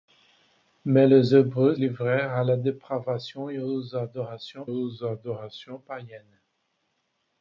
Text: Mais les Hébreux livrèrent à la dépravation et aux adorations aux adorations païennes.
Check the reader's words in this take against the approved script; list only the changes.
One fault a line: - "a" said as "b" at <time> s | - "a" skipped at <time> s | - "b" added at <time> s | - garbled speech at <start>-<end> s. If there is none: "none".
none